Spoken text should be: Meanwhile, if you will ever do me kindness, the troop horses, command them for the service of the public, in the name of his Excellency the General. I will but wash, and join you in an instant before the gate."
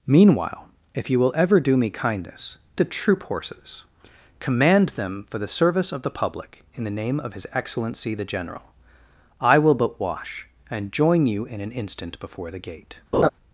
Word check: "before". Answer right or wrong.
right